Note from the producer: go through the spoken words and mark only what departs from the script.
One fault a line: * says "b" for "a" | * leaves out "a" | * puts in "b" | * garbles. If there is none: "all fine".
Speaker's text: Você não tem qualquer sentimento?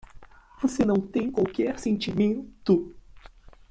all fine